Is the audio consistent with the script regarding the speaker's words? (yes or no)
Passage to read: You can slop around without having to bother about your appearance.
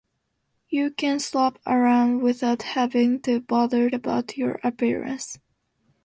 yes